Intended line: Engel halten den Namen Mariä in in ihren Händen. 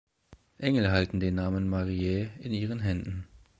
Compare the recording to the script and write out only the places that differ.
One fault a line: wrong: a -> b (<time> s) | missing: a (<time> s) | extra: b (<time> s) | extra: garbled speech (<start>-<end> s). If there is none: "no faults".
missing: in (2.5 s)